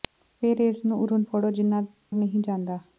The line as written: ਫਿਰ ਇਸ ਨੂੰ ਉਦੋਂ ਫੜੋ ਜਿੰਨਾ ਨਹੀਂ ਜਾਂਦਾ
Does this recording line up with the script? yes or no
yes